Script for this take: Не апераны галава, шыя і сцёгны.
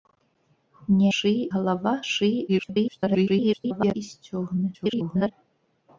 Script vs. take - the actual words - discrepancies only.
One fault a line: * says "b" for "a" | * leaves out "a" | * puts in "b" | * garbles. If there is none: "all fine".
* says "шыя" for "апераны"
* garbles
* garbles